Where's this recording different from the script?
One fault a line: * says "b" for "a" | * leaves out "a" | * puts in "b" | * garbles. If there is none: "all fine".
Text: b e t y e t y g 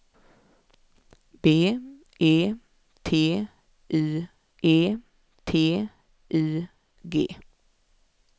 all fine